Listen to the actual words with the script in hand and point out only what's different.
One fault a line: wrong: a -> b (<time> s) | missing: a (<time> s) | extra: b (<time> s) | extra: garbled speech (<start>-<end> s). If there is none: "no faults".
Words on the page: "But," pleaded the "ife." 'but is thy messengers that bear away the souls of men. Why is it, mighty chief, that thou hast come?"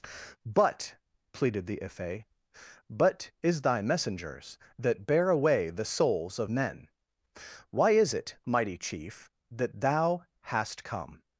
no faults